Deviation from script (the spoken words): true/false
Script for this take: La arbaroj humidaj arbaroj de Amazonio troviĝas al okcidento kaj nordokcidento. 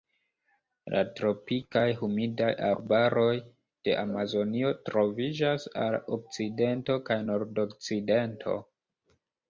true